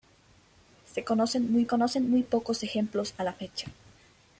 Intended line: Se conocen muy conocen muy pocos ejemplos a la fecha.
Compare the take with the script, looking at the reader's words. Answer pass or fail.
pass